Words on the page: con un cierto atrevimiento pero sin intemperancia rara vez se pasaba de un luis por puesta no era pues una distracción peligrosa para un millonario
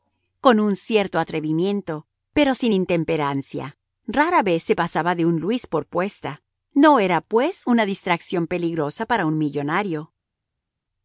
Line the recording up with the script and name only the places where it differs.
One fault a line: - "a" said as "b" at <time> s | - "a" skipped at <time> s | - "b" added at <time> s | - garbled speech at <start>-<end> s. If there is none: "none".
none